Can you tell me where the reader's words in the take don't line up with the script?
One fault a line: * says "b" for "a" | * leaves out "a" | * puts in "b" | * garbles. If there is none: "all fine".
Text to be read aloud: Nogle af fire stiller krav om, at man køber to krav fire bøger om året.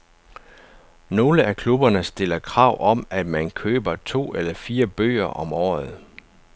* says "klubberne" for "fire"
* says "eller" for "krav"